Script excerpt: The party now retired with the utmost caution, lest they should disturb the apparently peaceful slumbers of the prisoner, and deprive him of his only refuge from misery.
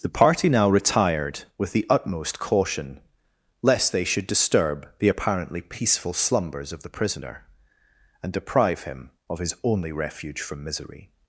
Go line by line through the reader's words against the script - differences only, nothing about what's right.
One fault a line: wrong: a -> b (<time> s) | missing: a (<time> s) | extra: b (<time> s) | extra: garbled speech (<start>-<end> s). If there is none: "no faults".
no faults